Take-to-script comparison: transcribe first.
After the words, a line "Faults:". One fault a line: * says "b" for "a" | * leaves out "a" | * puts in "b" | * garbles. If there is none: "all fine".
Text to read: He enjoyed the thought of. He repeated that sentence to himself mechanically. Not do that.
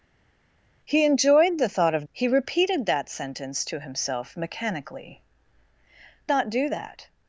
He enjoyed the thought of. He repeated that sentence to himself mechanically. Not do that.
Faults:
all fine